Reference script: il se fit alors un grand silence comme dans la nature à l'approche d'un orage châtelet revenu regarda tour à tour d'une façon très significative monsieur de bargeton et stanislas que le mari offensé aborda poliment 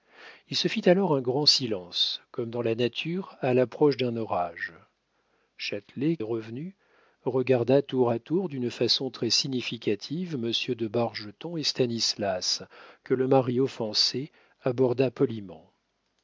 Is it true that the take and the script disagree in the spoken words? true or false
false